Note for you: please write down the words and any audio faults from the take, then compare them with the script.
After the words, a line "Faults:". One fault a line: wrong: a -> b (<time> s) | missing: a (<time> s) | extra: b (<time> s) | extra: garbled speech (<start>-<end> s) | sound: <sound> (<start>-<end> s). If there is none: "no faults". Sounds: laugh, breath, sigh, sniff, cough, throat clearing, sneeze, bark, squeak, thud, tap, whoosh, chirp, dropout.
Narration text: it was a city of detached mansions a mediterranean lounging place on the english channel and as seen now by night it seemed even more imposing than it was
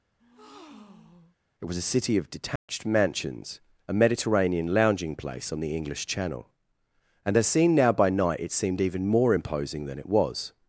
it was a city of detached mansions a mediterranean lounging place on the english channel and as seen now by night it seemed even more imposing than it was
Faults:
sound: breath (0.2-1.4 s)
sound: dropout (2.6-2.7 s)